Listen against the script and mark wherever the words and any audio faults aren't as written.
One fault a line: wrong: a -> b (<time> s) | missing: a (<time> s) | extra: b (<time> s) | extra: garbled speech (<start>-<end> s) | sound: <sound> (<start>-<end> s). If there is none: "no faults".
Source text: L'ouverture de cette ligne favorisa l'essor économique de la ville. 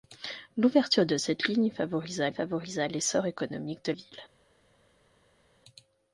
extra: favorisa (2.3 s)
missing: la (3.9 s)